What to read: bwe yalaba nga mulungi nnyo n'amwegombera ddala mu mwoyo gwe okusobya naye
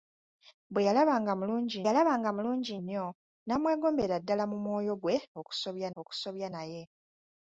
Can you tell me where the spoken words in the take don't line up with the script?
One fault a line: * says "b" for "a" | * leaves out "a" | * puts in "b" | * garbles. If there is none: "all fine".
* puts in "yalaba nga mulungi"
* puts in "okusobya"